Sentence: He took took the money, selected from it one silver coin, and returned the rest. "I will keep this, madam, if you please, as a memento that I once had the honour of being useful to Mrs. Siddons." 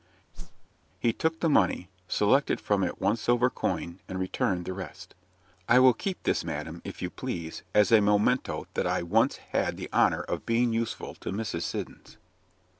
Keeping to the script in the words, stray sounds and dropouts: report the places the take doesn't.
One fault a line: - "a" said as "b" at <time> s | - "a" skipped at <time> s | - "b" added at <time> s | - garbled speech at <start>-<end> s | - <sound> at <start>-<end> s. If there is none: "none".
- whoosh at 0.3-0.7 s
- "took" skipped at 1.4 s